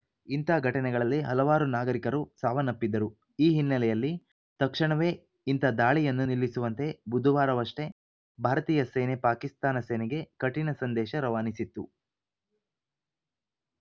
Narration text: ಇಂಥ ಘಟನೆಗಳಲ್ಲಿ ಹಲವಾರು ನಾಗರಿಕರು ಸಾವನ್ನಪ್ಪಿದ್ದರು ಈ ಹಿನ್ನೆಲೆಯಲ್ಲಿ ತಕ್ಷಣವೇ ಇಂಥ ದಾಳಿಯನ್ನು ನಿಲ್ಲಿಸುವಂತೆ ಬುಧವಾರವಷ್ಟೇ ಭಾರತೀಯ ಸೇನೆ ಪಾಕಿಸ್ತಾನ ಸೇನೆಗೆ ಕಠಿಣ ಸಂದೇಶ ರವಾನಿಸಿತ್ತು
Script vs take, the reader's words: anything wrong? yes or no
no